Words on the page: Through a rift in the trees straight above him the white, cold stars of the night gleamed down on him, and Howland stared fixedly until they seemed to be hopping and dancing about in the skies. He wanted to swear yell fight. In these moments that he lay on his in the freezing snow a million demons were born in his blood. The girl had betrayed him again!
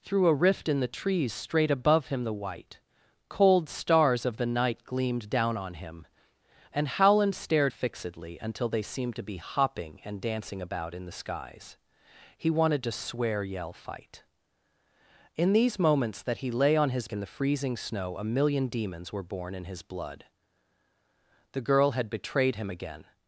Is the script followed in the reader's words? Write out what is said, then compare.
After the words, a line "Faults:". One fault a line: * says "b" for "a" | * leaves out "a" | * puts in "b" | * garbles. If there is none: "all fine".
Through a rift in the trees straight above him the white, cold stars of the night gleamed down on him, and Howland stared fixedly until they seemed to be hopping and dancing about in the skies. He wanted to swear yell fight. In these moments that he lay on his in the freezing snow a million demons were born in his blood. The girl had betrayed him again!
Faults:
all fine